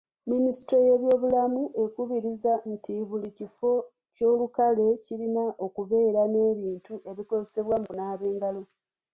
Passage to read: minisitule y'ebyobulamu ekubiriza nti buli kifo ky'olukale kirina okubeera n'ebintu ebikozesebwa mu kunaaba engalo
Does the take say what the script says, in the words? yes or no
yes